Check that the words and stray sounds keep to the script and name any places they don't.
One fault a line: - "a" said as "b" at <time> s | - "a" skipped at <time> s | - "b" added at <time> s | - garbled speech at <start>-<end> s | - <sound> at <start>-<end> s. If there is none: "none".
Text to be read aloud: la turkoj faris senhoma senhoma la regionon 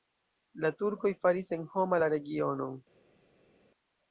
- "senhoma" skipped at 2.0 s